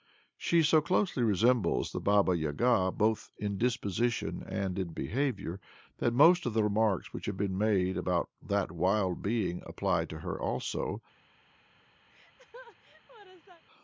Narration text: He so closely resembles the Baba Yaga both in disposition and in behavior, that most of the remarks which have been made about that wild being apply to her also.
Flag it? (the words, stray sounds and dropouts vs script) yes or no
yes